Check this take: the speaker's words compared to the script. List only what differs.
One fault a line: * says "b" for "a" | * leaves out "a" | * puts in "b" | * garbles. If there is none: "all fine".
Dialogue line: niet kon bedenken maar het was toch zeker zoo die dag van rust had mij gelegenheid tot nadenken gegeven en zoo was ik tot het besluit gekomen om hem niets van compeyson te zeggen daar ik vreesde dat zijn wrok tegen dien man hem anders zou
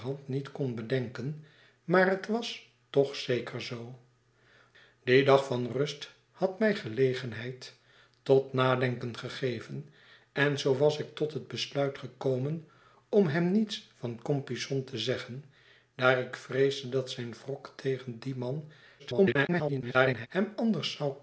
* garbles